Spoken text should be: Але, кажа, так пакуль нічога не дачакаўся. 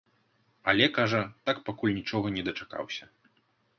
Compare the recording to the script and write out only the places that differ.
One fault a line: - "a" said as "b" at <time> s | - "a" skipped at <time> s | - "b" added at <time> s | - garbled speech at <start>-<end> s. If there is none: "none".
none